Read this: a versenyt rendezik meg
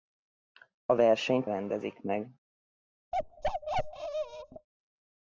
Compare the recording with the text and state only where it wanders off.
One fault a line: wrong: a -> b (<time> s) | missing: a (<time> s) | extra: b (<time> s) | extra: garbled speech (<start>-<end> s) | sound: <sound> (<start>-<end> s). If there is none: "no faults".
sound: bark (3.1-4.7 s)